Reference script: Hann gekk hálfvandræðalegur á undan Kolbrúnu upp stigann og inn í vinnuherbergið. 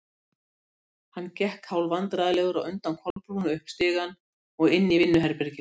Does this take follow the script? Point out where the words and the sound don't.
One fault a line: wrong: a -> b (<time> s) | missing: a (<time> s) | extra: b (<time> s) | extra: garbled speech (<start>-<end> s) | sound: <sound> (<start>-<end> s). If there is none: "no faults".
sound: dropout (3.1-3.2 s)